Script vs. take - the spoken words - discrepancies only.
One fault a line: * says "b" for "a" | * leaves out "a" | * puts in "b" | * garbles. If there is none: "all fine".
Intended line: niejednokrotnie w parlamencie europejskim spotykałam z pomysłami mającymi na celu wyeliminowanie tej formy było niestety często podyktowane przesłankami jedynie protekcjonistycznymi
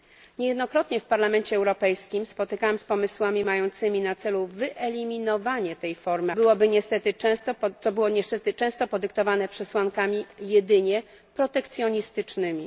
all fine